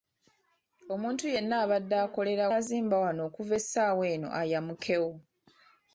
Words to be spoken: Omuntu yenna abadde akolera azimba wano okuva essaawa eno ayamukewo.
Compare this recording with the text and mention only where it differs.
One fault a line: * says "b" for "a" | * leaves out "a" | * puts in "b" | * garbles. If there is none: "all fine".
all fine